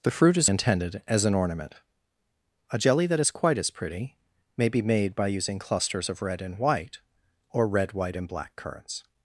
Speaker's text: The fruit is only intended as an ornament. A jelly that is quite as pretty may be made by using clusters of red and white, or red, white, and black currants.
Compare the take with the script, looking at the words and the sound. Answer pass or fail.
fail